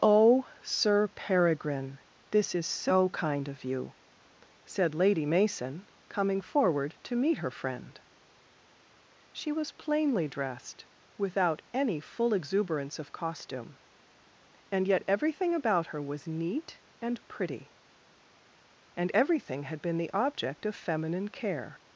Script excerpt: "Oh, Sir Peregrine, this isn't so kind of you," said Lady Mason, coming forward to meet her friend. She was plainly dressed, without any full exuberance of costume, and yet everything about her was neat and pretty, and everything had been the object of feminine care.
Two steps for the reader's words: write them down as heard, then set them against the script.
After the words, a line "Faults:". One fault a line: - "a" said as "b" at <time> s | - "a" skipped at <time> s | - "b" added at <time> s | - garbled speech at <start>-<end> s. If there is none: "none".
"Oh, Sir Peregrine, this is so kind of you," said Lady Mason, coming forward to meet her friend. She was plainly dressed, without any full exuberance of costume, and yet everything about her was neat and pretty, and everything had been the object of feminine care.
Faults:
- "isn't" said as "is" at 2.5 s